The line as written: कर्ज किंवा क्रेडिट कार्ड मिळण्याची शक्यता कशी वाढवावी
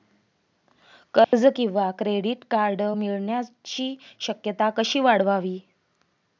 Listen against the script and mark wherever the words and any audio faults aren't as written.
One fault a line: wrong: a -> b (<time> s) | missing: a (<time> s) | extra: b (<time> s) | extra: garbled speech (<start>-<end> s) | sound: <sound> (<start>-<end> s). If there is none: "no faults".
sound: dropout (1.2-1.3 s)